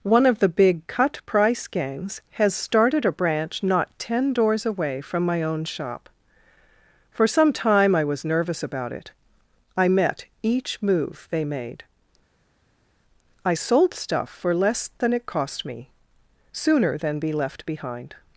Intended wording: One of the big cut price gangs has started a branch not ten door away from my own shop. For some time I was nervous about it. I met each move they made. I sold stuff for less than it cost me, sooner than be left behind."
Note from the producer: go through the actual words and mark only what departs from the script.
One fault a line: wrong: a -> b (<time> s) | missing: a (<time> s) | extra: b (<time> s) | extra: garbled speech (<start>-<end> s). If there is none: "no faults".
wrong: door -> doors (4.3 s)